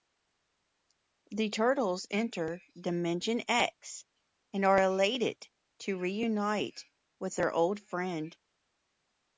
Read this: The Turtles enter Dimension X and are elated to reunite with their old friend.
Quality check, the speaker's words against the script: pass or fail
pass